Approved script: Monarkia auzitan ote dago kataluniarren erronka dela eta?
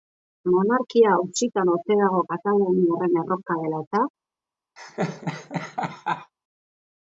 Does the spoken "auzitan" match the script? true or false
true